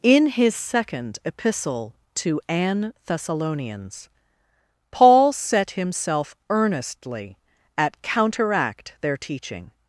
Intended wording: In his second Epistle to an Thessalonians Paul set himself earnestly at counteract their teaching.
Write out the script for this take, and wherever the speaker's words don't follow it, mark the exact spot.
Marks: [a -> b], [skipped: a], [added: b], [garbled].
In his second Epistle to an Thessalonians Paul set himself earnestly at counteract their teaching.